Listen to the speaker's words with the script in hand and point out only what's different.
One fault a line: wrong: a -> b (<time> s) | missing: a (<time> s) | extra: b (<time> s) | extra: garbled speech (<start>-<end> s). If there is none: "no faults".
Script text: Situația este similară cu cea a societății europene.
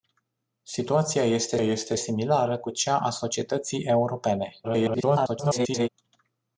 extra: este (1.6 s)
extra: garbled speech (4.6-5.9 s)